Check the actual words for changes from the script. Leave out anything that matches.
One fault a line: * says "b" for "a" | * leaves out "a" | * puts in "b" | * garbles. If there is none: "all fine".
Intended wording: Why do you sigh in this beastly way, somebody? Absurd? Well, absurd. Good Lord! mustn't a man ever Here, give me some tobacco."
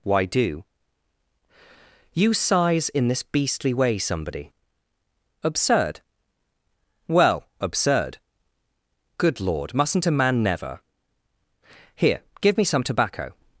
* says "sighs" for "sigh"
* says "never" for "ever"